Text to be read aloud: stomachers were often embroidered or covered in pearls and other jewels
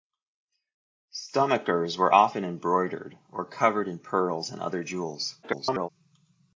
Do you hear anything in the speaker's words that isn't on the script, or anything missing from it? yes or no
yes